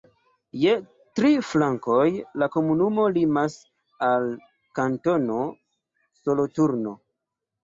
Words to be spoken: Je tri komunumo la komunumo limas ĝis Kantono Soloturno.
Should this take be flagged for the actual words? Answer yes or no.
yes